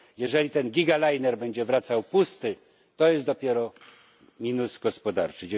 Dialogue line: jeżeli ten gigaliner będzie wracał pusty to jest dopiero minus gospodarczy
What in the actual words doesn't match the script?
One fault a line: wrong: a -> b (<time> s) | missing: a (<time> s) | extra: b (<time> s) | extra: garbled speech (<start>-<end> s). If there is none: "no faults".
no faults